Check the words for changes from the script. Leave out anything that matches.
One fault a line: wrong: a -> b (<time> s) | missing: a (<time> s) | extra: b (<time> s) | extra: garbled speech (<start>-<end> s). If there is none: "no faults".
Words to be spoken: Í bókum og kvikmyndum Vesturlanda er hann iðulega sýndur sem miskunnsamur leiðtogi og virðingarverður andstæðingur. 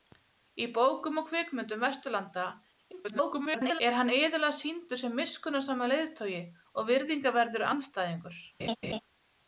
extra: garbled speech (2.9-3.8 s)